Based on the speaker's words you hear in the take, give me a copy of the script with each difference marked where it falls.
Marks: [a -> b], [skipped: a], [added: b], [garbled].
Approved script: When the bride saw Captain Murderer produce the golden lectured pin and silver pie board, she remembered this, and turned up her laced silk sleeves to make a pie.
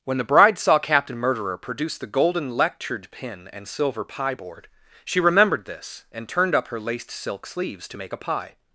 When the bride saw Captain Murderer produce the golden lectured pin and silver pie board, she remembered this, and turned up her laced silk sleeves to make a pie.